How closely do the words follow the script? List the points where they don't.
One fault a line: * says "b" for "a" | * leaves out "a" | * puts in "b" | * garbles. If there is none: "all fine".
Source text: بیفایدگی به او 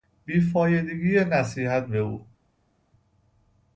* puts in "نصیحت"